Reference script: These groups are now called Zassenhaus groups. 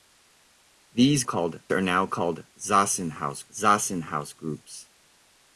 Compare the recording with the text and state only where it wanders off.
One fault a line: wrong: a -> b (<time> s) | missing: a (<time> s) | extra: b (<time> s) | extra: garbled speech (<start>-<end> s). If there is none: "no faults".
wrong: groups -> called (1.2 s)
extra: Zassenhaus (3.5 s)